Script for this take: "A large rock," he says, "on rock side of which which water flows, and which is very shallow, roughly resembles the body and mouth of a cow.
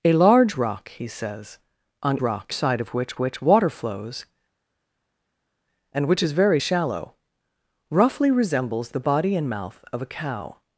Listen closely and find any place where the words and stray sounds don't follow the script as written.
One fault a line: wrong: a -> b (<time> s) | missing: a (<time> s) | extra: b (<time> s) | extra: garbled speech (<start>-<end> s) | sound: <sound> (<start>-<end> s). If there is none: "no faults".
no faults